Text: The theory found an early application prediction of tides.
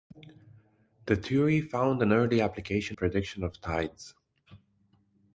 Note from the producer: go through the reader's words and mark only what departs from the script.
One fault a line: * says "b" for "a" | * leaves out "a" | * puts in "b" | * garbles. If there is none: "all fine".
all fine